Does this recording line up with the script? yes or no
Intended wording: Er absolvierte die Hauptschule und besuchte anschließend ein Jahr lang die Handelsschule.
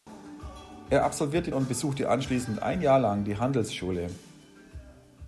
no